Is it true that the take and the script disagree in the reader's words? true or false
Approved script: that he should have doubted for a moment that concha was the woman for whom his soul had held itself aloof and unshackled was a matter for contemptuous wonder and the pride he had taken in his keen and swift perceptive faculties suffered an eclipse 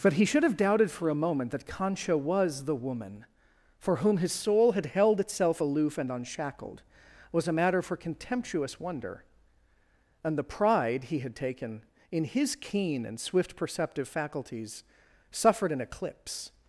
true